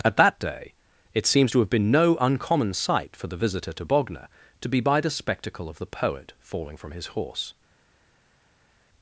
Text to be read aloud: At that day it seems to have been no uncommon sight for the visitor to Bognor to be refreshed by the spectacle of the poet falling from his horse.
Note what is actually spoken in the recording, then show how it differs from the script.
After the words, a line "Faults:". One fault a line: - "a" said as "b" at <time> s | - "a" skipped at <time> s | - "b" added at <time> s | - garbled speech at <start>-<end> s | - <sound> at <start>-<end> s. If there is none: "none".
At that day it seems to have been no uncommon sight for the visitor to Bognor to be by the spectacle of the poet falling from his horse.
Faults:
- "refreshed" skipped at 4.8 s